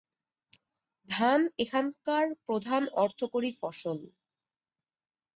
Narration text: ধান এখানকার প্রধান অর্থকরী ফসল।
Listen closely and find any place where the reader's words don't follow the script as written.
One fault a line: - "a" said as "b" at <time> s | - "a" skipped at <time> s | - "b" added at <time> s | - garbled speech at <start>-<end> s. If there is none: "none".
none